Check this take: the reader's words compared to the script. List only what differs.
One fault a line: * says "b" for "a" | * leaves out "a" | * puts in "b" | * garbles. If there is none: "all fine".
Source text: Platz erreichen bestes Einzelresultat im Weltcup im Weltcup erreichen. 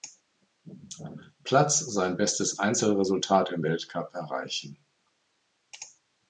* says "sein" for "erreichen"
* leaves out "im Weltcup"